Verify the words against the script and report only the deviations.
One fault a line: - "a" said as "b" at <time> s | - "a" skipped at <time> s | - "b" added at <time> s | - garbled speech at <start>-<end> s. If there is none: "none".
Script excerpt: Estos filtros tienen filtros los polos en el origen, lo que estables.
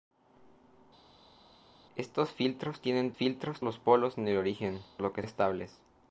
none